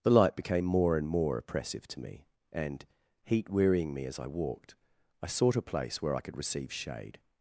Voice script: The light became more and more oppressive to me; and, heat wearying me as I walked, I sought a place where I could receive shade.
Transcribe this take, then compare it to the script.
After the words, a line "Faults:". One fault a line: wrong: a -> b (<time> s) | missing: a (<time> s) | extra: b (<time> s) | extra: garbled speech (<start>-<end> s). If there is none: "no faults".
The light became more and more oppressive to me; and, heat wearying me as I walked, I sought a place where I could receive shade.
Faults:
no faults